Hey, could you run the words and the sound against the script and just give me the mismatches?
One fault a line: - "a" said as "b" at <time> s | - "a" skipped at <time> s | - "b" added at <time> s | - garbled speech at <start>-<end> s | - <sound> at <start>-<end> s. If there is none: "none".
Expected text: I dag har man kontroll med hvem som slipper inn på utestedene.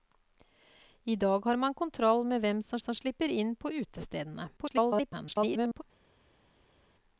- "som" added at 2.8 s
- garbled speech at 4.6-5.8 s